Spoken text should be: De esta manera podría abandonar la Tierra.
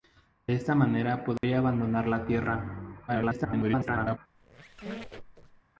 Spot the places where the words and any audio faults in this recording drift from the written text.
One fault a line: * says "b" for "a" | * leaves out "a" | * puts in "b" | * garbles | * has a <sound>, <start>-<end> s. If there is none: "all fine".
* has a dropout, 1.4-1.4 s
* garbles
* has a squeak, 4.3-5.6 s